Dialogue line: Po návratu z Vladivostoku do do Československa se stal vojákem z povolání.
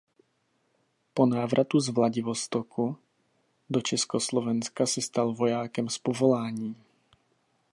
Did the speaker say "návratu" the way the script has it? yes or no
yes